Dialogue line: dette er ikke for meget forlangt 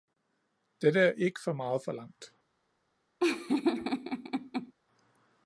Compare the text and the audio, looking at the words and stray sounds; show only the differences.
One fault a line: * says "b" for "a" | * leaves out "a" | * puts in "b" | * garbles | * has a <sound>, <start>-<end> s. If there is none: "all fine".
* has a laugh, 3.2-4.7 s